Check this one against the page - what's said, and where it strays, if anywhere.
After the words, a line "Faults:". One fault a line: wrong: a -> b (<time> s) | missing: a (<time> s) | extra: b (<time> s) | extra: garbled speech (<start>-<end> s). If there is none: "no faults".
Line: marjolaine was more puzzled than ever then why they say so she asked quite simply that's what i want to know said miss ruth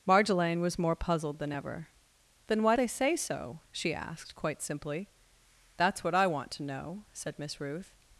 marjolaine was more puzzled than ever then why they say so she asked quite simply that's what i want to know said miss ruth
Faults:
no faults